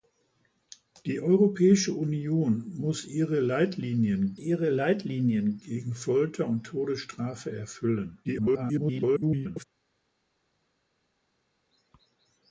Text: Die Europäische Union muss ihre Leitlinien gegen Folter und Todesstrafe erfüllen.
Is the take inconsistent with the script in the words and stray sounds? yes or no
yes